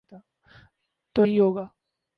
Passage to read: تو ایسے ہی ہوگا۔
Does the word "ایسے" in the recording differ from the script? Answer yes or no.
yes